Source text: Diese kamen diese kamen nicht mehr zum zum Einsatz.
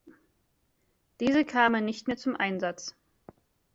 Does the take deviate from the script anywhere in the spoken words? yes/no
yes